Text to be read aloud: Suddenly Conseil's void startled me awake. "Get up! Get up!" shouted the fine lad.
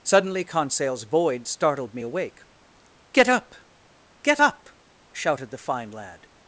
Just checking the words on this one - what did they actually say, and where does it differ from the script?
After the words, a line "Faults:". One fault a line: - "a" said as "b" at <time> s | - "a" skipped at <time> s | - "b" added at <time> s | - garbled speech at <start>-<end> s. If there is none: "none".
Suddenly Conseil's void startled me awake. "Get up! Get up!" shouted the fine lad.
Faults:
none